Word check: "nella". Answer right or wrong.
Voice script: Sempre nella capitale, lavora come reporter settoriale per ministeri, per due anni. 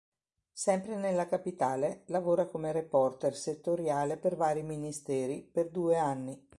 right